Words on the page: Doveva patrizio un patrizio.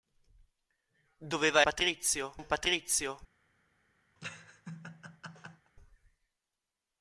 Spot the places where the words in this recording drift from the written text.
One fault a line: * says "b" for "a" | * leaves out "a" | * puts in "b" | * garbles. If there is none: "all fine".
all fine